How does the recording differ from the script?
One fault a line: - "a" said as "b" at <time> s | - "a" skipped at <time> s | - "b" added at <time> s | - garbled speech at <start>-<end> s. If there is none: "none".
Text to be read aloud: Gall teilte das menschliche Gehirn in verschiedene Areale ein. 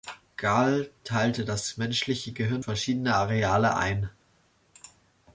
- "in" skipped at 2.6 s